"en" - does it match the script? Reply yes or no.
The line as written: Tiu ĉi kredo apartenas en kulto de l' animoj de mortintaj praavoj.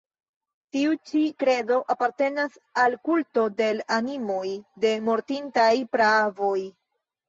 no